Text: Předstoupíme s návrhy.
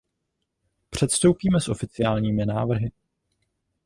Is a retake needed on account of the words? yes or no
yes